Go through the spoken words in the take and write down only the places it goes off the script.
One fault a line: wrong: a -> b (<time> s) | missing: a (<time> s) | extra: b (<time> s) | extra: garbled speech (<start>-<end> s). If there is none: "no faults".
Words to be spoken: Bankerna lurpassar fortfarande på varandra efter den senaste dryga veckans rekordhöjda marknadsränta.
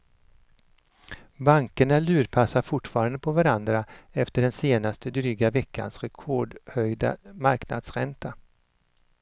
no faults